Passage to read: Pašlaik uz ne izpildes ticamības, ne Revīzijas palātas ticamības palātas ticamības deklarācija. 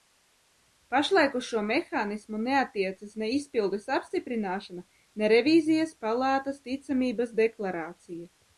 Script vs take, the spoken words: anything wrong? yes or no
yes